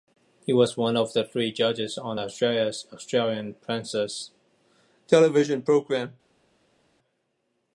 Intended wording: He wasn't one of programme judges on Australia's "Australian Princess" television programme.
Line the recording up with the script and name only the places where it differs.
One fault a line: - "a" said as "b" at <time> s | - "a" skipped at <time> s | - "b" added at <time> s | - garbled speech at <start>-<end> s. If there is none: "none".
- "wasn't" said as "was" at 0.5 s
- "programme" said as "three" at 1.2 s